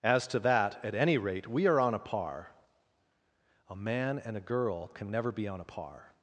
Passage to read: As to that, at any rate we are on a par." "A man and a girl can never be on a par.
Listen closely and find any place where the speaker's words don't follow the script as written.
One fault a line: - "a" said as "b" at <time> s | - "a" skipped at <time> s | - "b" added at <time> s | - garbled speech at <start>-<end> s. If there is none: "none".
none